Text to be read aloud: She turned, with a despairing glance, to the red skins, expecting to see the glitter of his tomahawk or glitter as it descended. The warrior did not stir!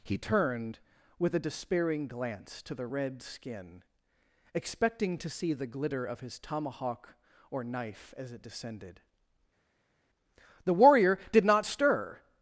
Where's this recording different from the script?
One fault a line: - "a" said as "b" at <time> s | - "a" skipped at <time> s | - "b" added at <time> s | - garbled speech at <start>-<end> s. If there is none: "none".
- "She" said as "He" at 0.0 s
- "skins" said as "skin" at 3.2 s
- "glitter" said as "knife" at 7.6 s